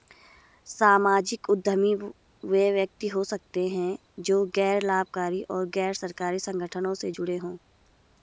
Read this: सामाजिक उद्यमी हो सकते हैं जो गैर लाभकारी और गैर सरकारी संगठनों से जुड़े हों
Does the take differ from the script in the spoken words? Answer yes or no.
yes